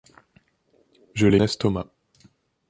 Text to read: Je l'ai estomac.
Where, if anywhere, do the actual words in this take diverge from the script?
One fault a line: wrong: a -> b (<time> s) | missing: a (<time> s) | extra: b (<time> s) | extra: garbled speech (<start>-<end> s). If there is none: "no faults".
no faults